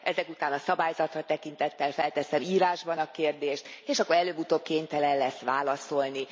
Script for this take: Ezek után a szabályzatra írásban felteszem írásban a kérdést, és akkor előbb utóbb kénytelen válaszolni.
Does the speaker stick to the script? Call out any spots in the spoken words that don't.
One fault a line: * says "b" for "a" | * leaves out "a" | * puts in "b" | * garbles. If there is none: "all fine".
* says "tekintettel" for "írásban"
* puts in "lesz"